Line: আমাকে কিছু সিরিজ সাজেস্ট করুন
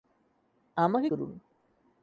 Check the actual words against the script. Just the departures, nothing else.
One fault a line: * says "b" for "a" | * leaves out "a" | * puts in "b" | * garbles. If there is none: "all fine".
* leaves out "কিছু সিরিজ সাজেস্ট"